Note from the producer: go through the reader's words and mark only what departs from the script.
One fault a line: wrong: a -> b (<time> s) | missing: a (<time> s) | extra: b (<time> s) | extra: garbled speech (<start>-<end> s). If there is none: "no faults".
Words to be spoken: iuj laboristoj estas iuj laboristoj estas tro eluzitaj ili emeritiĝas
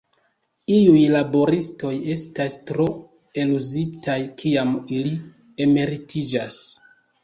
missing: iuj laboristoj estas (2.6 s)
extra: kiam (4.4 s)